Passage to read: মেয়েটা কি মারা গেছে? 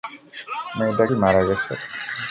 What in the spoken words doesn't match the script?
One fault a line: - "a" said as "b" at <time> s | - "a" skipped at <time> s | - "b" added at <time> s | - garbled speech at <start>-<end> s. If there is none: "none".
none